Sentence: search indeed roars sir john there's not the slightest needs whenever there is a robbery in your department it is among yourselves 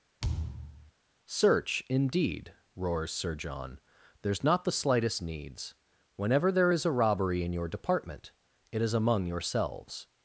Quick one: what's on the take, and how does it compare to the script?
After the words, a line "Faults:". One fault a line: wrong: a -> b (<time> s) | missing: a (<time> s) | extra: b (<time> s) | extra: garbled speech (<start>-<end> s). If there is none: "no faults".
search indeed roars sir john there's not the slightest needs whenever there is a robbery in your department it is among yourselves
Faults:
no faults